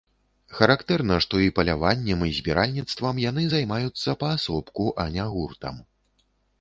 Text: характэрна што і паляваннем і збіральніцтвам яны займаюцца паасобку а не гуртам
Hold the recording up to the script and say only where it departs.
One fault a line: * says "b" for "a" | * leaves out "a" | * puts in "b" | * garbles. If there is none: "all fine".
all fine